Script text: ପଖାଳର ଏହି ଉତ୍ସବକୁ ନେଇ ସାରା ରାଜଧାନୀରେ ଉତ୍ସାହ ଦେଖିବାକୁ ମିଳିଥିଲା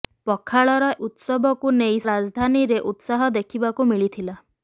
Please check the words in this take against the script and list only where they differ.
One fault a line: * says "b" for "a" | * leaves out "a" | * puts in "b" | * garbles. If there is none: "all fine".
* leaves out "ଏହି"
* leaves out "ସାରା"